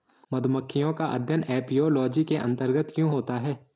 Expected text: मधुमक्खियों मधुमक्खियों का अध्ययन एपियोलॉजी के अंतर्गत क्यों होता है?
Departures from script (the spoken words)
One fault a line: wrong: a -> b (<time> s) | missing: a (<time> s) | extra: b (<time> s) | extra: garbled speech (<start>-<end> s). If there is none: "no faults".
missing: मधुमक्खियों (0.9 s)